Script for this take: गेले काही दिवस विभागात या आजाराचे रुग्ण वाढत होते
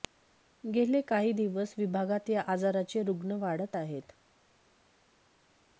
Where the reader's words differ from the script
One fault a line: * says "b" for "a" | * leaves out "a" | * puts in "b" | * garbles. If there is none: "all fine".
* says "आहेत" for "होते"